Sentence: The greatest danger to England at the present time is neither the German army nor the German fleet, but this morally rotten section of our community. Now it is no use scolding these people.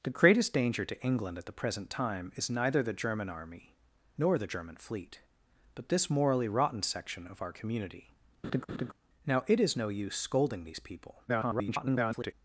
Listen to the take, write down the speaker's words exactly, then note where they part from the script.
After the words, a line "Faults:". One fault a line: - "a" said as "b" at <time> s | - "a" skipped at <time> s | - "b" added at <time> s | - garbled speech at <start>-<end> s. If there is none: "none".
The greatest danger to England at the present time is neither the German army nor the German fleet, but this morally rotten section of our community. Now it is no use scolding these people. [garbled]
Faults:
- garbled speech at 11.3-12.3 s